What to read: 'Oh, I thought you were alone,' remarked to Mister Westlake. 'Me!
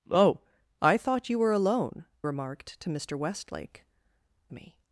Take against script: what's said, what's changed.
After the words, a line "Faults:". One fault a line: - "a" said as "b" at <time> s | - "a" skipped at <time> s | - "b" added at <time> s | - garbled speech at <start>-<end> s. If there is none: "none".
'Oh, I thought you were alone,' remarked to Mister Westlake. 'Me!
Faults:
none